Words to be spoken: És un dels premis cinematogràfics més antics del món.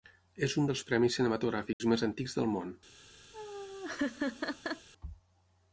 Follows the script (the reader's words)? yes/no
yes